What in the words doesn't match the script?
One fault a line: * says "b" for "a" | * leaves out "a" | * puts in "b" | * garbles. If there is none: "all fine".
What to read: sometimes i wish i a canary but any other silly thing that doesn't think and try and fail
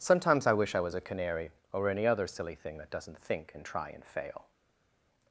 * puts in "was"
* says "or" for "but"